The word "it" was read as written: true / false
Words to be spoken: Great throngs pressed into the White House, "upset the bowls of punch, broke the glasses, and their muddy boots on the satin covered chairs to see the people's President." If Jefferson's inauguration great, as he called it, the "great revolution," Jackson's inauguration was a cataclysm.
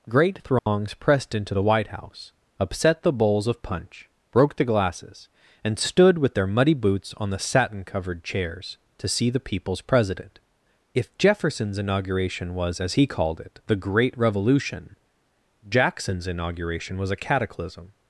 true